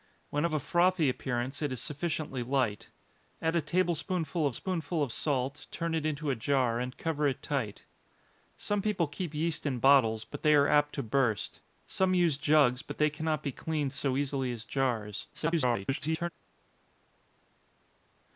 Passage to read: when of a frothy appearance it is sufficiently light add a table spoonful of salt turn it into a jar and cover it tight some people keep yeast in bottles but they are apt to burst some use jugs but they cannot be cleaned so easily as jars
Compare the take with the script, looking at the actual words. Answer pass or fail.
fail